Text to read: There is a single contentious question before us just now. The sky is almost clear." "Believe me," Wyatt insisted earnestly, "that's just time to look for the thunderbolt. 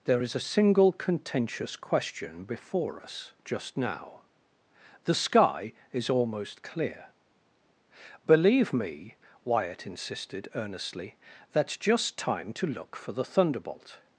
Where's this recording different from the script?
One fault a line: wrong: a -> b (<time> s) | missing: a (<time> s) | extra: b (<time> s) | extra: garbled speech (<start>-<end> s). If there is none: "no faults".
no faults